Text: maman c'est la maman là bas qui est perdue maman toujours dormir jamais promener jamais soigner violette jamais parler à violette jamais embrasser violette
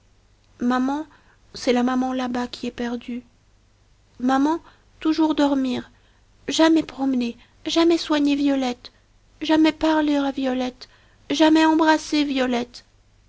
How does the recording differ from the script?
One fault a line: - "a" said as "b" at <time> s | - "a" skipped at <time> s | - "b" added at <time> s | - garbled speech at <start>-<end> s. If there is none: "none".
none